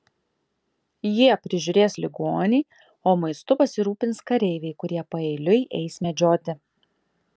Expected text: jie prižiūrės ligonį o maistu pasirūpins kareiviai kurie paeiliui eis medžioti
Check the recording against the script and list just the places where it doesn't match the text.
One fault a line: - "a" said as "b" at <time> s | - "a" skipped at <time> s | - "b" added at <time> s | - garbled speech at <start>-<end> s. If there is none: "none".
none